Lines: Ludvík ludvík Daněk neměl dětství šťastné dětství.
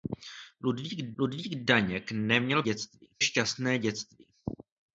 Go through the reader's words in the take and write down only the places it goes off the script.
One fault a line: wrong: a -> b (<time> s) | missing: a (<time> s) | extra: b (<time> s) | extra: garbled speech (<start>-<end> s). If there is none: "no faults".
no faults